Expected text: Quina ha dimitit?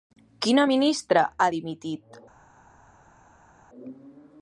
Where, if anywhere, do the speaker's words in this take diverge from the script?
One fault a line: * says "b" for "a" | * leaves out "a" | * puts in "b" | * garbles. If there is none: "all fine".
* puts in "ministra"